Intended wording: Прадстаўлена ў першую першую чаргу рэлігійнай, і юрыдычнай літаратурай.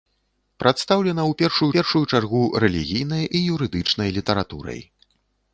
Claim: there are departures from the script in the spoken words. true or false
false